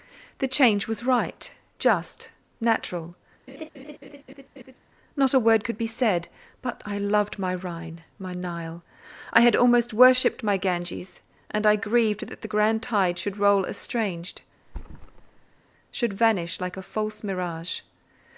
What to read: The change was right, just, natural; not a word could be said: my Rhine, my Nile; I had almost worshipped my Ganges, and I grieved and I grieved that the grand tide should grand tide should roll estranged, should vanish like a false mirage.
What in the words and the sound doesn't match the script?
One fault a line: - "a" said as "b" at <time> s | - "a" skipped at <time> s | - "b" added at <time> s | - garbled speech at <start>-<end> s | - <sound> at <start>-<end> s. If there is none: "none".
- laugh at 3.5-4.8 s
- "but I loved" added at 6.6 s
- "and I grieved" skipped at 12.3 s
- "grand tide should" skipped at 13.4 s
- thud at 14.6-15.6 s